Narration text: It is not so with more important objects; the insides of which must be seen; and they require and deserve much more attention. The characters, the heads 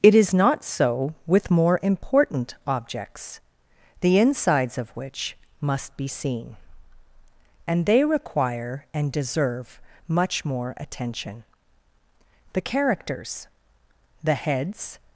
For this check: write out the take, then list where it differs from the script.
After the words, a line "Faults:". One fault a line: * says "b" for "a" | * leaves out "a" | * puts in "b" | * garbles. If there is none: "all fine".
It is not so with more important objects; the insides of which must be seen; and they require and deserve much more attention. The characters, the heads
Faults:
all fine